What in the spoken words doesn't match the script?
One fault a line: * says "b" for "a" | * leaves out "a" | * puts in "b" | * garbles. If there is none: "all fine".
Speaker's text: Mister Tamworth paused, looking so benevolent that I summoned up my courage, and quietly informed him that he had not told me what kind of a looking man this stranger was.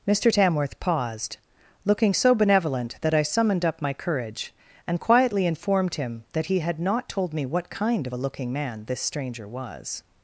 all fine